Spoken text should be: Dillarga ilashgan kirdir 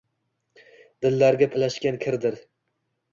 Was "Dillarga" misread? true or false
false